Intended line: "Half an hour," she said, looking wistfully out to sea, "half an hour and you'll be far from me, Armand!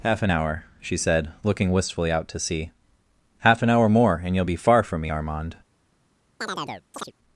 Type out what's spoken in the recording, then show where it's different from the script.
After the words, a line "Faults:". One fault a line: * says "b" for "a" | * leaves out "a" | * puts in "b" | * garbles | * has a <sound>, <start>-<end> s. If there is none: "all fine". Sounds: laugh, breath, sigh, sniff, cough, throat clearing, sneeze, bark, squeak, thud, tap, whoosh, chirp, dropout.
"Half an hour," she said, looking wistfully out to sea, "half an hour more and you'll be far from me, Armand!
Faults:
* puts in "more"
* has a chirp, 6.4-7.1 s